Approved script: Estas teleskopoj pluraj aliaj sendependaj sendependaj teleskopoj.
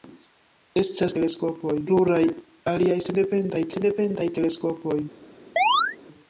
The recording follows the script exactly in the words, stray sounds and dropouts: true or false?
false